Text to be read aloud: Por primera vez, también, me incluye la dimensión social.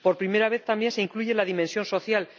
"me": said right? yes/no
no